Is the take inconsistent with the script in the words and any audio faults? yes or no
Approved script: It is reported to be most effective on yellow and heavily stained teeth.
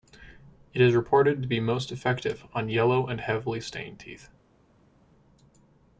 no